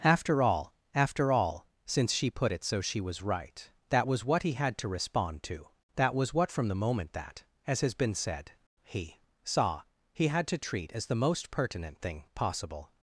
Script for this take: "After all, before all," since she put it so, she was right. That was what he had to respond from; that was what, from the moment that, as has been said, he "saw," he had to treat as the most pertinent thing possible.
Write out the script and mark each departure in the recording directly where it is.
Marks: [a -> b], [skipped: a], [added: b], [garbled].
"After all, [before -> after] all," since she put it so, she was right. That was what he had to respond [from; -> to] that was what, from the moment that, as has been said, he "saw," he had to treat as the most pertinent thing possible.